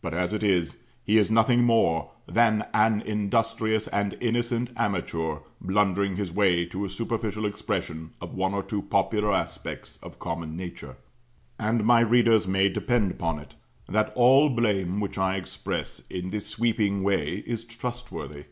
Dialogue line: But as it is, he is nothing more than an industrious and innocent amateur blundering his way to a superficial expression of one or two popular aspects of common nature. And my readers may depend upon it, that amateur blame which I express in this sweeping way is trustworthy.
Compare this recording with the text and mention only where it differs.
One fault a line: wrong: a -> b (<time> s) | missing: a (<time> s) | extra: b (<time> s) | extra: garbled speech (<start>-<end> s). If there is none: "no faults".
wrong: amateur -> all (14.1 s)